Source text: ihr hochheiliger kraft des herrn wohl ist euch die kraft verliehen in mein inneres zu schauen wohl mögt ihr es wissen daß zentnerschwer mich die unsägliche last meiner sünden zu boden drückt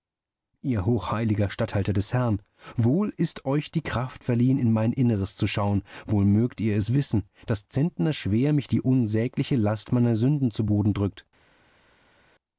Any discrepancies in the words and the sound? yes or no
yes